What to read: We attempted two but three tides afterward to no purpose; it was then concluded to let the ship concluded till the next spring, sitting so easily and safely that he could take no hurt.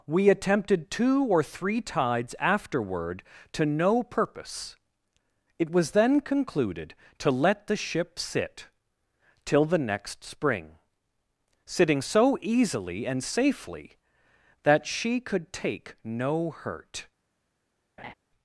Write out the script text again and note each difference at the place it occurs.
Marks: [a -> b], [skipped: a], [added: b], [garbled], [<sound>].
We attempted two [but -> or] three tides afterward to no purpose; it was then concluded to let the ship [concluded -> sit] till the next spring, sitting so easily and safely that [he -> she] could take no hurt. [laugh]